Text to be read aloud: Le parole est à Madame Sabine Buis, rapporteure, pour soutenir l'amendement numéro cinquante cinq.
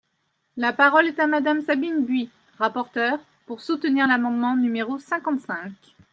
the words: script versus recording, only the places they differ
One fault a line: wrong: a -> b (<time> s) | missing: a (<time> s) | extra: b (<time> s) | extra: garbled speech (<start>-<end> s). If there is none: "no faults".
wrong: Le -> La (0.6 s)